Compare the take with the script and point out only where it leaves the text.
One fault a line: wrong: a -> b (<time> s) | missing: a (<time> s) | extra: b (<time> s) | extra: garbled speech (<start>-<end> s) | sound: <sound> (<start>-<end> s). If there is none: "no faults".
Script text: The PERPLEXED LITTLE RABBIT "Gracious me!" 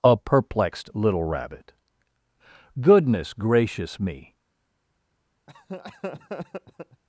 wrong: The -> A (0.0 s)
extra: GOODNESS (2.8 s)
sound: laugh (5.5-7.0 s)